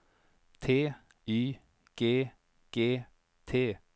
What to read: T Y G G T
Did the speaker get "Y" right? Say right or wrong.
right